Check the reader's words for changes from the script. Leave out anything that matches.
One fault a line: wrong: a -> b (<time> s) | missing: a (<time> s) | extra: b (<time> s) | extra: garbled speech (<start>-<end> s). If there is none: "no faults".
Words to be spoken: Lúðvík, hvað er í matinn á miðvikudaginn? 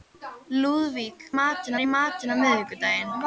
wrong: hvað -> matinn (1.4 s)